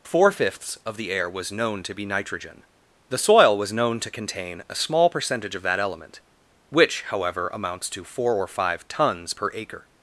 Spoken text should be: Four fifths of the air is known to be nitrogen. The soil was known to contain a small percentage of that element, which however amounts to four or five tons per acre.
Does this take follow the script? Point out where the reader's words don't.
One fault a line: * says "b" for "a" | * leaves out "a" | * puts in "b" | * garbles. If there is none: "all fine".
* says "was" for "is"